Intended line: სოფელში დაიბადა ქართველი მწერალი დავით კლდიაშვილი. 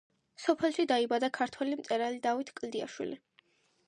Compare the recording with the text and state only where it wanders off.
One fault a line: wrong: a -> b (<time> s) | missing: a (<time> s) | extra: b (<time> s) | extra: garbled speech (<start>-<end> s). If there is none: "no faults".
no faults